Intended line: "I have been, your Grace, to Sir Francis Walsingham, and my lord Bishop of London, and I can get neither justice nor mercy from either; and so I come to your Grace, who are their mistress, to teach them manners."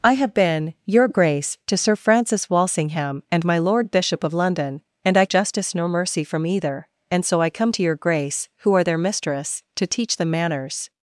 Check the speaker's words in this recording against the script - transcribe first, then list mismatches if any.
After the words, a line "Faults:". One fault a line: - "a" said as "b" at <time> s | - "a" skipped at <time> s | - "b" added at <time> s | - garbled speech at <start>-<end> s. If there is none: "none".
"I have been, your Grace, to Sir Francis Walsingham, and my lord Bishop of London, and I justice nor mercy from either; and so I come to your Grace, who are their mistress, to teach them manners."
Faults:
- "can get neither" skipped at 5.2 s